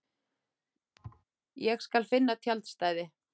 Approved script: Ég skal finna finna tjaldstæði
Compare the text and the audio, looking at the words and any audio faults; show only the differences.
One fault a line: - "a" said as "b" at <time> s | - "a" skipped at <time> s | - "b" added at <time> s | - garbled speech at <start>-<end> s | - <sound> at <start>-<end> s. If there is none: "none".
- thud at 1.0-1.2 s
- "finna" skipped at 2.4 s